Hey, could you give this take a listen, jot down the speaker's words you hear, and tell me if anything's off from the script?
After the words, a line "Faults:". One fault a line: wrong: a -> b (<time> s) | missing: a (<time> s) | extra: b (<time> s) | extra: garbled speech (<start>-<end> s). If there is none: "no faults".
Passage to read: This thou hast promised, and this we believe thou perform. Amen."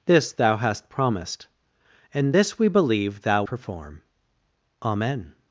This thou hast promised, and this we believe thou perform. Amen."
Faults:
no faults